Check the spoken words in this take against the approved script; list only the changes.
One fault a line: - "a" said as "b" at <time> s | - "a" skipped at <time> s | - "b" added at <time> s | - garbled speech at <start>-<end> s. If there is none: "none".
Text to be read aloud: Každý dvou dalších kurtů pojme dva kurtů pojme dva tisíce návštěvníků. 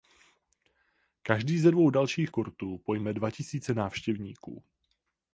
- "ze" added at 1.6 s
- "kurtů pojme dva" skipped at 3.3 s